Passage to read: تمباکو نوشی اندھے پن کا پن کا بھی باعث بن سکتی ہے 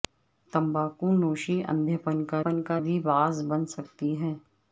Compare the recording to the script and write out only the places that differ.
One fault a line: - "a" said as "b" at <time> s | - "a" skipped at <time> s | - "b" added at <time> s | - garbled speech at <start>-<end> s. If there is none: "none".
none